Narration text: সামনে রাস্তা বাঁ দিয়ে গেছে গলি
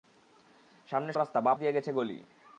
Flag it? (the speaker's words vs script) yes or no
no